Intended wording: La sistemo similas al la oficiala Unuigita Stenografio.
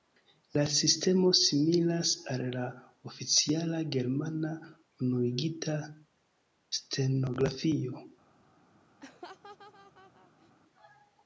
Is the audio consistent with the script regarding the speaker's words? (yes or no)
no